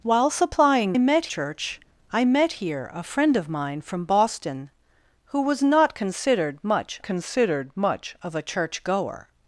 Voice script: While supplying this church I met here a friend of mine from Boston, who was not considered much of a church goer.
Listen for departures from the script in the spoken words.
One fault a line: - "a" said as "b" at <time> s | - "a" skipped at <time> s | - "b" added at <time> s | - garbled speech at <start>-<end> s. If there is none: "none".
- "this" said as "met" at 1.0 s
- "considered much" added at 7.0 s